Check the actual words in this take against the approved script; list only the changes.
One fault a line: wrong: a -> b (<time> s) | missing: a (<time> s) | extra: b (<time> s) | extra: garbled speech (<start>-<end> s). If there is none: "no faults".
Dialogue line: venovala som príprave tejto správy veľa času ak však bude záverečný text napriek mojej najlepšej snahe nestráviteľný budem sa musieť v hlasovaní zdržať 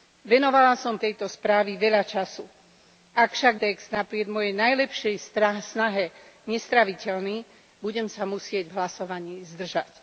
missing: príprave (1.0 s)
missing: bude záverečný (3.6 s)